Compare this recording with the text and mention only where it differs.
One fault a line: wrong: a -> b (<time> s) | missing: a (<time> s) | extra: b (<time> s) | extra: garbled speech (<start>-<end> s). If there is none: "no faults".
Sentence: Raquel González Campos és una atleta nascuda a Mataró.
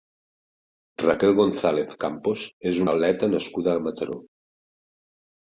missing: una (2.8 s)